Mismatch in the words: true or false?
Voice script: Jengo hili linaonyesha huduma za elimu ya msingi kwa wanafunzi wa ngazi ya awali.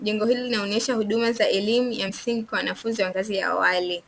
false